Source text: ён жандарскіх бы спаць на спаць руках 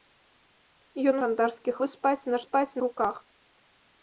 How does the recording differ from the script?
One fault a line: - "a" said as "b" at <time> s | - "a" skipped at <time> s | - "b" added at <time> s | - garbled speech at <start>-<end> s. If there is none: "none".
none